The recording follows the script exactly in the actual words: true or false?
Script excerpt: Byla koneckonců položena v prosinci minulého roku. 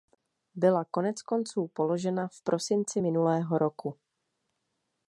true